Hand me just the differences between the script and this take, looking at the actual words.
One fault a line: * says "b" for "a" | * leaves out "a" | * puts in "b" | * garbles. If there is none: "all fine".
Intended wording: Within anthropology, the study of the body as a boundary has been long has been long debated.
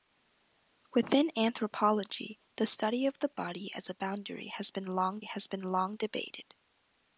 all fine